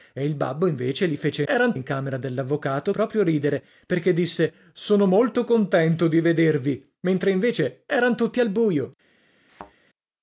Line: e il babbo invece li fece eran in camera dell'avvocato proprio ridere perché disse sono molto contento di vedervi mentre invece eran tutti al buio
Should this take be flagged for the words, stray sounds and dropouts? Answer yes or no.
yes